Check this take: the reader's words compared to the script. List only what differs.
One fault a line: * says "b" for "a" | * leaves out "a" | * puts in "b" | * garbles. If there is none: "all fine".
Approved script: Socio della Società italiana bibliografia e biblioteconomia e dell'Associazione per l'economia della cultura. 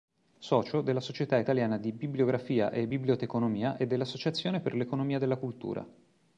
* puts in "di"